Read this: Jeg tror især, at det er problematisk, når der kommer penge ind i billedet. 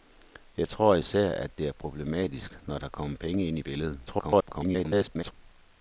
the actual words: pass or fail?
fail